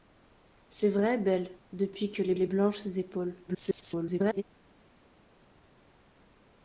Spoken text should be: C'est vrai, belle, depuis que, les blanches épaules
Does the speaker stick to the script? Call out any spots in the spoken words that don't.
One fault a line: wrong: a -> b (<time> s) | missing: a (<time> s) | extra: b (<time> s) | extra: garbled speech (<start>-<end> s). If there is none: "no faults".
extra: les (2.3 s)
extra: garbled speech (3.5-4.4 s)